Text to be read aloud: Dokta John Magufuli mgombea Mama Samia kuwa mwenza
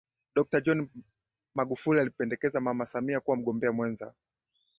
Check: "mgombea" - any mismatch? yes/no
yes